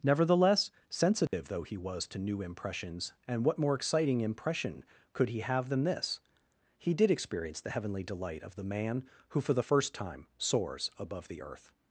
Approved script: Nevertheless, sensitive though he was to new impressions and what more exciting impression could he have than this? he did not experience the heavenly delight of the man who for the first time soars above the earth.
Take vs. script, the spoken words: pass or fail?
fail